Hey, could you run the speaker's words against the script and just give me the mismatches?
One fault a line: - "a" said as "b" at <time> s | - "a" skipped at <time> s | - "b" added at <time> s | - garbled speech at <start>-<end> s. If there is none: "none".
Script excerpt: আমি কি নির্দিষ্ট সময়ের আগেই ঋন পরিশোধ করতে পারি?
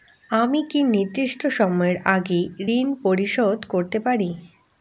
none